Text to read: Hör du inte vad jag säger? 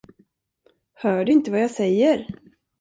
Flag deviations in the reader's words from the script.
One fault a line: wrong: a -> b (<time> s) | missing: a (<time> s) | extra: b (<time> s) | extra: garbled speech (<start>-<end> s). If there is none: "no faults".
no faults